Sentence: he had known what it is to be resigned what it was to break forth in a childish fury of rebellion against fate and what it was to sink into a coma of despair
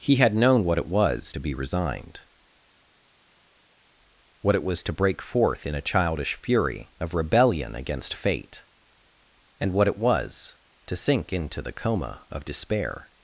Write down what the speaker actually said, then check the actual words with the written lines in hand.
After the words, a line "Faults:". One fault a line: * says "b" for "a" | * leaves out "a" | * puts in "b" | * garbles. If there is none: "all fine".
he had known what it was to be resigned what it was to break forth in a childish fury of rebellion against fate and what it was to sink into the coma of despair
Faults:
* says "was" for "is"
* says "the" for "a"